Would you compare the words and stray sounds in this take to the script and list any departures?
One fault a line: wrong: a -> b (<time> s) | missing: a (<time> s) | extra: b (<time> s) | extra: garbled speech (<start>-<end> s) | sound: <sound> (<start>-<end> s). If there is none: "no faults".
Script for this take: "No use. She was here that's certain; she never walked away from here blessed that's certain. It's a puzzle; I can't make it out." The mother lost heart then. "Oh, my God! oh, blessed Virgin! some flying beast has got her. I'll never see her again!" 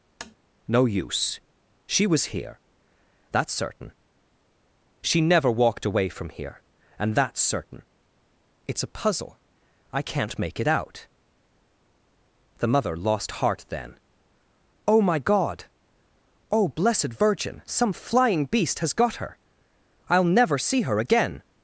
sound: tap (0.2-0.4 s)
wrong: blessed -> and (7.0 s)